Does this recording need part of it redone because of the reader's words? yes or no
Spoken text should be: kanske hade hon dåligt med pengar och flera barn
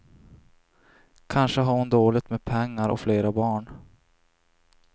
yes